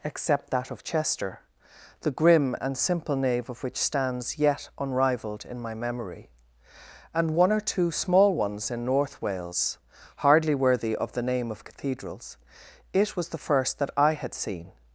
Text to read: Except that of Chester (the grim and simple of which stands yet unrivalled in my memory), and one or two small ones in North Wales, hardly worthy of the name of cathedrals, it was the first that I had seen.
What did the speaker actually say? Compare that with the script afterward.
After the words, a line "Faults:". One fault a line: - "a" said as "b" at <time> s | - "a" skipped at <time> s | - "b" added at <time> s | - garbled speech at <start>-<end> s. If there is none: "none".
Except that of Chester (the grim and simple nave of which stands yet unrivalled in my memory), and one or two small ones in North Wales, hardly worthy of the name of cathedrals, it was the first that I had seen.
Faults:
- "nave" added at 3.1 s